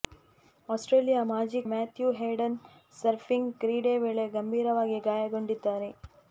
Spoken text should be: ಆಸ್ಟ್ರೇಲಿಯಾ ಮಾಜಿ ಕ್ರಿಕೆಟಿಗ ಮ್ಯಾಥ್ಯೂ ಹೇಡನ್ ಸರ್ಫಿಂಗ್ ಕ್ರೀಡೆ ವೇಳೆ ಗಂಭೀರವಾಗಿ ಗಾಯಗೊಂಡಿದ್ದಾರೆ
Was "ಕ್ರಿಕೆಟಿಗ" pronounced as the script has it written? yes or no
no